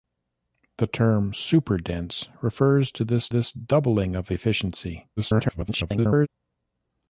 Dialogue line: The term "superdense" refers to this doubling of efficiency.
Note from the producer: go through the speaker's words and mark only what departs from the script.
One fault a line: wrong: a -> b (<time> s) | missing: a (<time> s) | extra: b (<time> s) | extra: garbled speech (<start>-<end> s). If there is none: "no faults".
extra: this (3.3 s)
extra: garbled speech (5.2-6.3 s)